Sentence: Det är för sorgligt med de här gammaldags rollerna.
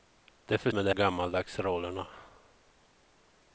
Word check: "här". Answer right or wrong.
wrong